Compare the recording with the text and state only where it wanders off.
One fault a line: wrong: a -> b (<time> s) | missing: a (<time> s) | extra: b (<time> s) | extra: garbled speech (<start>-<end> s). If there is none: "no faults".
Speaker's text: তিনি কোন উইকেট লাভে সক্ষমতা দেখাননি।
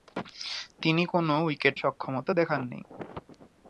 missing: লাভে (1.8 s)